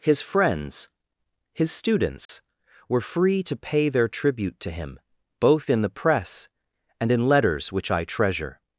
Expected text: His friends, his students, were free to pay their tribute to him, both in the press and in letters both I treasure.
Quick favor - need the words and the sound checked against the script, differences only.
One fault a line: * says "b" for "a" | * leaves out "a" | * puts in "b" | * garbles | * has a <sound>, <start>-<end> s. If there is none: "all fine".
* has a dropout, 2.2-2.3 s
* says "which" for "both"